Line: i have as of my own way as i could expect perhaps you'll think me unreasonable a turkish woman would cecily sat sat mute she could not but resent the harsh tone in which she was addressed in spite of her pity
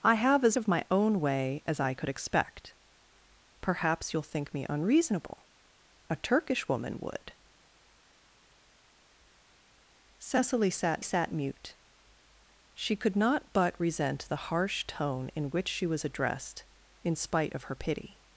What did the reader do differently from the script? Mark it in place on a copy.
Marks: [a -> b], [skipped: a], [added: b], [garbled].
i have as of my own way as i could expect perhaps you'll think me unreasonable a turkish woman would cecily sat sat mute she could not but resent the harsh tone in which she was addressed in spite of her pity